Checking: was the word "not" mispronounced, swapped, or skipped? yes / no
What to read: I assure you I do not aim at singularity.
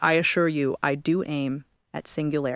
yes